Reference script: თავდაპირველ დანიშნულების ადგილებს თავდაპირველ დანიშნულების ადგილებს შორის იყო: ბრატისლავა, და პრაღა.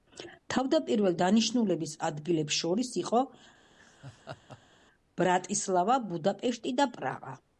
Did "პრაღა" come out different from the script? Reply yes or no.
no